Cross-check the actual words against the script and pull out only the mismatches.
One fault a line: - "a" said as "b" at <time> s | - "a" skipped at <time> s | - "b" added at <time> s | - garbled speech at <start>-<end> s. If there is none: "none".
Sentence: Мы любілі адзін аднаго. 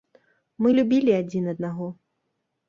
none